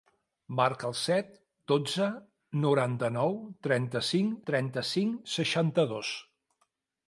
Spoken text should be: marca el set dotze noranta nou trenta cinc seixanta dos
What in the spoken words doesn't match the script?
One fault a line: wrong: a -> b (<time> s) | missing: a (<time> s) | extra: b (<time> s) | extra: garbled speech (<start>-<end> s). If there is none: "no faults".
extra: trenta cinc (4.5 s)